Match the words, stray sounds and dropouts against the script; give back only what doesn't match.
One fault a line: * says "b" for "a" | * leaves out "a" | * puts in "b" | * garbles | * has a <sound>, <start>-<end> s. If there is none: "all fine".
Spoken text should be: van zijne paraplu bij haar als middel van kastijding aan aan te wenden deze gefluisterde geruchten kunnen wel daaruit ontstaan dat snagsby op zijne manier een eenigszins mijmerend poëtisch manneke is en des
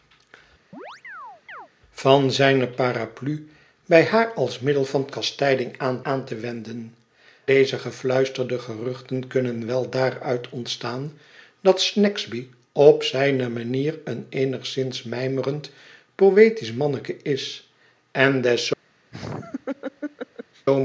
* has a chirp, 0.7-1.7 s
* has a laugh, 19.1-20.7 s